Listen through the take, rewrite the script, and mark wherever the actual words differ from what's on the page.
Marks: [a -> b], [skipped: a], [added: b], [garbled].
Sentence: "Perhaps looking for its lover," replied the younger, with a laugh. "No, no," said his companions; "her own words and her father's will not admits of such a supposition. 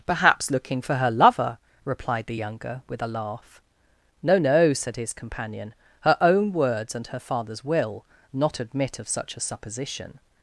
"Perhaps looking for [its -> her] lover," replied the younger, with a laugh. "No, no," said his [companions; -> companion] "her own words and her father's will not [admits -> admit] of such a supposition.